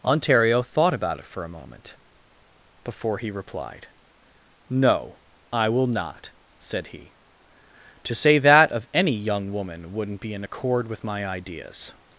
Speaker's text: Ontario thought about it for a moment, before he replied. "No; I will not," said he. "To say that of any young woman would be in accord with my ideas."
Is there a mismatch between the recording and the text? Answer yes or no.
yes